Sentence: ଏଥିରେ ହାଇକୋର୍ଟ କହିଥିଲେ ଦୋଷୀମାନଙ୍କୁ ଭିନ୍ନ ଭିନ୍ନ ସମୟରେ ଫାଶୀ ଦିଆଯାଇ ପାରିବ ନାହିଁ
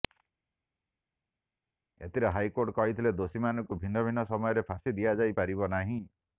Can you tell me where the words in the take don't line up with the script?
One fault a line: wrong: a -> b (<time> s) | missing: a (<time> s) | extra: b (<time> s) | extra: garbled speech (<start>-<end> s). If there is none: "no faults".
no faults